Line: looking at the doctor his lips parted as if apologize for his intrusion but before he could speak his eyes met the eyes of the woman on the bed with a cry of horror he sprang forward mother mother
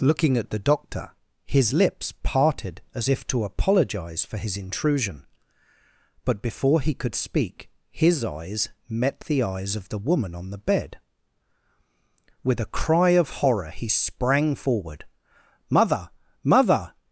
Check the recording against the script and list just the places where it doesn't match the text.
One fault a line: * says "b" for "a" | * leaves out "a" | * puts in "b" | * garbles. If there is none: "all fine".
* puts in "to"